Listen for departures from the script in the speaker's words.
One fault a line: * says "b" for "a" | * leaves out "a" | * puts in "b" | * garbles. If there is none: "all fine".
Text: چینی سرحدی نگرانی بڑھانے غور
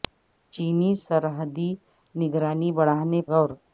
all fine